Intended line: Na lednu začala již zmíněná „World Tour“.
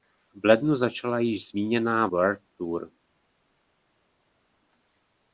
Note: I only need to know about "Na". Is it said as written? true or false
false